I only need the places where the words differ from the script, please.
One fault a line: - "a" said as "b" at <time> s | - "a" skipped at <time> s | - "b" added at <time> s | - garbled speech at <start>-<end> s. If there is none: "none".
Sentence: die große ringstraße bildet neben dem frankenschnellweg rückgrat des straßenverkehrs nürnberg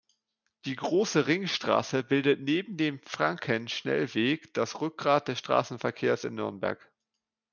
- "das" added at 4.5 s
- "in" added at 6.2 s